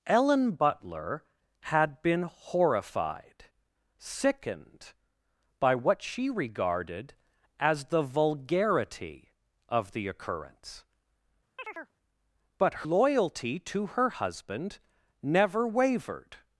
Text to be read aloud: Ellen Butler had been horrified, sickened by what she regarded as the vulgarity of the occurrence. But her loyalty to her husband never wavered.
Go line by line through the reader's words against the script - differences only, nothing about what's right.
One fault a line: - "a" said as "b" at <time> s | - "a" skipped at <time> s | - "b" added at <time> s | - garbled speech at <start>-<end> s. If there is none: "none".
- "her" skipped at 12.9 s